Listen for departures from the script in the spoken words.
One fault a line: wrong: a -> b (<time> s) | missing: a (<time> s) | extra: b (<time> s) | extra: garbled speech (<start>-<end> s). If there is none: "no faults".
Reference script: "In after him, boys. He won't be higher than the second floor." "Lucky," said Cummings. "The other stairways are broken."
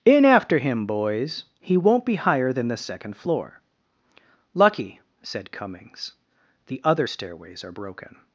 no faults